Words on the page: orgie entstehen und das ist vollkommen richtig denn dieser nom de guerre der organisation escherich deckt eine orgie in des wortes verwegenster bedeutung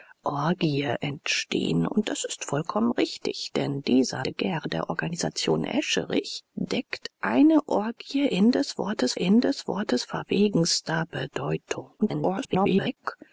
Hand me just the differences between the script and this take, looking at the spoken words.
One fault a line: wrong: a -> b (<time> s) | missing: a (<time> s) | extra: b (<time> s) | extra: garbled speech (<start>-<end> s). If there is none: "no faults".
missing: nom (4.2 s)
extra: in des wortes (9.1 s)
extra: garbled speech (12.0-13.0 s)